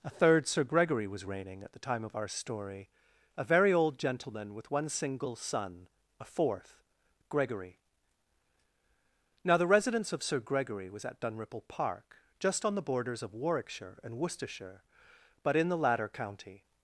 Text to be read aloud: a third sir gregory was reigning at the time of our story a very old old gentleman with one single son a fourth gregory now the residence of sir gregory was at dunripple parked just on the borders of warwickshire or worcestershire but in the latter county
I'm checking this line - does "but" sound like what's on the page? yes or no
yes